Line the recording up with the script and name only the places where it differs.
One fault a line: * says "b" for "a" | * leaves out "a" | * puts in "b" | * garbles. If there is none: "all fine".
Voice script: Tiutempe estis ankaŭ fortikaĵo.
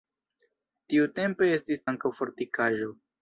all fine